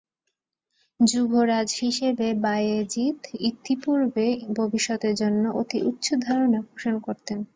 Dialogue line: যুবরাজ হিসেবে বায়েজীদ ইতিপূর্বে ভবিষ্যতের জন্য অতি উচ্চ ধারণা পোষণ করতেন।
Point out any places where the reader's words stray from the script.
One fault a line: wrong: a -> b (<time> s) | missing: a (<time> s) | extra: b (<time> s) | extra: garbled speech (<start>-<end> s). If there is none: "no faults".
no faults